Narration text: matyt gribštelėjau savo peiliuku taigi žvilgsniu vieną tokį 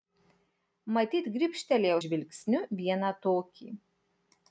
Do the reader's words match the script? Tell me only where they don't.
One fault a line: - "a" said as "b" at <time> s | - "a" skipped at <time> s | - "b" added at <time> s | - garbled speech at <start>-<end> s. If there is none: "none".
- "savo peiliuku taigi" skipped at 2.0 s